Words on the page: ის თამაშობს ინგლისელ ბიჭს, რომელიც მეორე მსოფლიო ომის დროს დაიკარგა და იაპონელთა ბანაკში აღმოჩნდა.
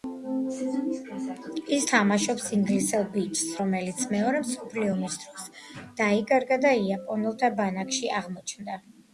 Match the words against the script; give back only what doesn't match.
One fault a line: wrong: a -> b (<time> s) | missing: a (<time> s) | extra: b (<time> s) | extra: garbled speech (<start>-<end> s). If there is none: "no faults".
no faults